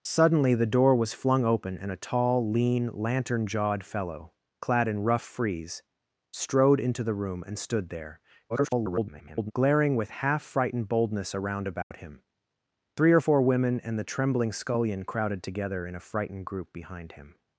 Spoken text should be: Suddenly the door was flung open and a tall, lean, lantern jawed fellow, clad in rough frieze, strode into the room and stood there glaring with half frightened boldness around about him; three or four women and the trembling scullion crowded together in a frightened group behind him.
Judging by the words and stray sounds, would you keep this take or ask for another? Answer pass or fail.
fail